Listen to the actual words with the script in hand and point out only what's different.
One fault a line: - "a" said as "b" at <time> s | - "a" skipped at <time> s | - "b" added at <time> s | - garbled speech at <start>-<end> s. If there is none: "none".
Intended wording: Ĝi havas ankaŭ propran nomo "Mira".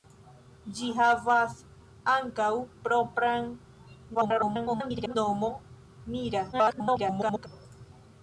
- garbled speech at 4.1-5.2 s
- garbled speech at 6.5-7.5 s